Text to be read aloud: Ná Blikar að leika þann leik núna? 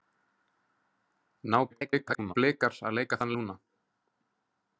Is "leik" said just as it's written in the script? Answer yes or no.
no